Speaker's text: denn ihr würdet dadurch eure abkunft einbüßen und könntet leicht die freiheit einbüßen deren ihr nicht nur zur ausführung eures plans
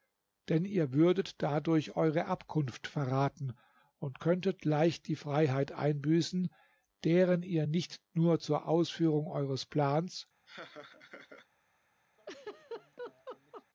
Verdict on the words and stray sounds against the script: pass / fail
fail